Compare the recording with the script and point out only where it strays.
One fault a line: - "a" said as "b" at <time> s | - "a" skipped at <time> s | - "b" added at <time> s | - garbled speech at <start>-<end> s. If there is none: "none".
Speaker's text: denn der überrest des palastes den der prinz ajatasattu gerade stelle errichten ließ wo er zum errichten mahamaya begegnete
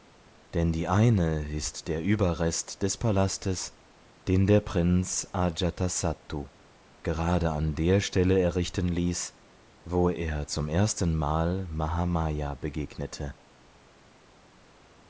- "die eine ist" added at 0.7 s
- "an der" added at 7.5 s
- "errichten" said as "erstenmal" at 10.7 s